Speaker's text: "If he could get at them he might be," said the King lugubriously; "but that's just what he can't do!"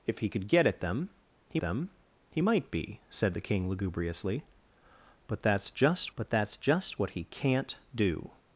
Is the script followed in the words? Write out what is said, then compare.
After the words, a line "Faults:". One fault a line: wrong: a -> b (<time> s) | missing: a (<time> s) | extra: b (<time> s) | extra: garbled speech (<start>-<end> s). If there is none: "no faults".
"If he could get at them he them he might be," said the King lugubriously; "but that's just but that's just what he can't do!"
Faults:
extra: them he (1.6 s)
extra: but that's just (6.1 s)